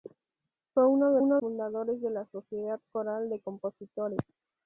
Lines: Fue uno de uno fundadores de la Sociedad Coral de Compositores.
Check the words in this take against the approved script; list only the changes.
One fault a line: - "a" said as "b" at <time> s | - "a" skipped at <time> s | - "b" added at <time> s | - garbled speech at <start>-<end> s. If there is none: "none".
none